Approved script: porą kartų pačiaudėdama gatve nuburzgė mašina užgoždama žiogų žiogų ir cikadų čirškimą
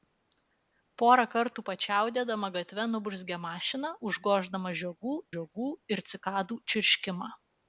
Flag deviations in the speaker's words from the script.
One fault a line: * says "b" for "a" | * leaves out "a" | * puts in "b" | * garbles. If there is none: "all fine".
all fine